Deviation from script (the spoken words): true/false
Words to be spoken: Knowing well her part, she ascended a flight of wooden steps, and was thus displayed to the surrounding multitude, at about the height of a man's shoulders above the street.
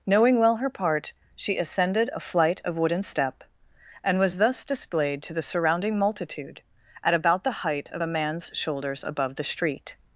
true